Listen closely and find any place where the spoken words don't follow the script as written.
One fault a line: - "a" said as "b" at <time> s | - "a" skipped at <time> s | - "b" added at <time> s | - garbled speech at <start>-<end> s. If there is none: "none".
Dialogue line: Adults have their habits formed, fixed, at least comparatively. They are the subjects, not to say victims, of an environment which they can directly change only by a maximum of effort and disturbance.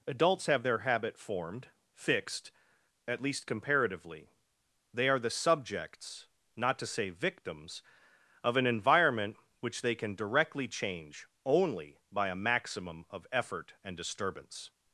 - "habits" said as "habit" at 0.8 s